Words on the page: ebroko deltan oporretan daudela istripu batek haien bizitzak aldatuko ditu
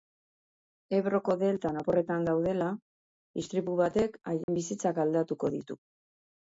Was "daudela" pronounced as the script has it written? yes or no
yes